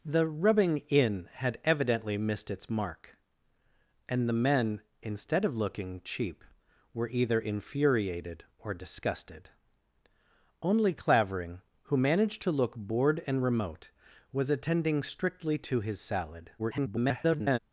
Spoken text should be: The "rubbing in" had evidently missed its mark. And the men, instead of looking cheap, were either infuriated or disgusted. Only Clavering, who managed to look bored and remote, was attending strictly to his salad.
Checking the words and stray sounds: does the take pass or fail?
fail